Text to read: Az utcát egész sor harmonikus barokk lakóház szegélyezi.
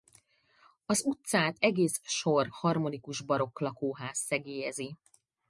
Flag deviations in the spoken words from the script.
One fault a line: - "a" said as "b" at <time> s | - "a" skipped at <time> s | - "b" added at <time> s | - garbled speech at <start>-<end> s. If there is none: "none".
none